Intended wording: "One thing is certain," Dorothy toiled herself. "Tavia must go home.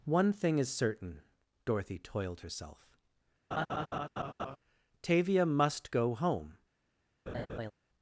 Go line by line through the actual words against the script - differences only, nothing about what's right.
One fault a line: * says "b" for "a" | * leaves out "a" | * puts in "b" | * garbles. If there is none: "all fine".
all fine